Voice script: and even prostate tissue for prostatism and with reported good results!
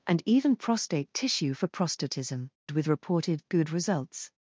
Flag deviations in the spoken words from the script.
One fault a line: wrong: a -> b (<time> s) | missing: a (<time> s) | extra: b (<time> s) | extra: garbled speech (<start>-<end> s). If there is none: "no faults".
missing: and (2.5 s)